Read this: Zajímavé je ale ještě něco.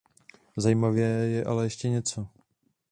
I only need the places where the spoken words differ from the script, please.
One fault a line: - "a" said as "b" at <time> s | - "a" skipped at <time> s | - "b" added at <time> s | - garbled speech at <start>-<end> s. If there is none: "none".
none